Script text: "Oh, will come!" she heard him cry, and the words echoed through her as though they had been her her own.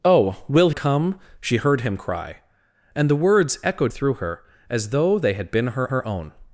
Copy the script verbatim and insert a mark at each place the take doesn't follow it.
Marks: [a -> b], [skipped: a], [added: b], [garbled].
"Oh, will come!" she heard him cry, and the words echoed through her as though they had been her her own.